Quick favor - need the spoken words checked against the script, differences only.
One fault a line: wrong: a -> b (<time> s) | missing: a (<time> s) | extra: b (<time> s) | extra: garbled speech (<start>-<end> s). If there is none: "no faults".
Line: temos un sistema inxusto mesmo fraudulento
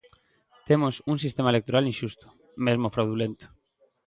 extra: electoral (1.5 s)